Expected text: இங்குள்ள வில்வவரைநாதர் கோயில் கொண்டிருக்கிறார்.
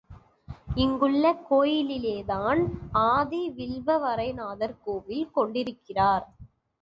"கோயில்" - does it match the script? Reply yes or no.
yes